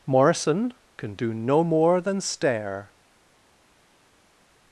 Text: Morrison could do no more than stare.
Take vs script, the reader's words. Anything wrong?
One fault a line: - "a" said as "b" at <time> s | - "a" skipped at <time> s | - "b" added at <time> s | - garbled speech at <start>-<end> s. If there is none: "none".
- "could" said as "can" at 1.0 s